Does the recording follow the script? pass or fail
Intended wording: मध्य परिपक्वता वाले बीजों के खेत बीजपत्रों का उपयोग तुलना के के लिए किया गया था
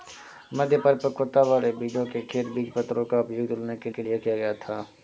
pass